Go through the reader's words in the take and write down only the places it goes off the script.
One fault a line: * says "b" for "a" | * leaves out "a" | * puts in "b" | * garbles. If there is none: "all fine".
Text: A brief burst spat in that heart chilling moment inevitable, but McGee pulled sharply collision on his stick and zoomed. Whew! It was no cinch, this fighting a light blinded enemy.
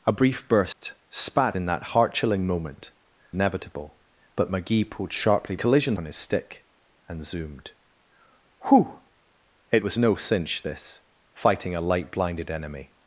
all fine